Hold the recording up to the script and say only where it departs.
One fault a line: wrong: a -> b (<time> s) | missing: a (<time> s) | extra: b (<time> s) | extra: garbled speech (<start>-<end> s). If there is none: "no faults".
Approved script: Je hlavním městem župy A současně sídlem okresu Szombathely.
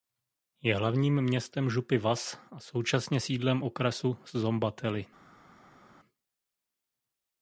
extra: Vas (2.0 s)